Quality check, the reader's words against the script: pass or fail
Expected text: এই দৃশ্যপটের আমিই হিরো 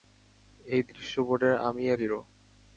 pass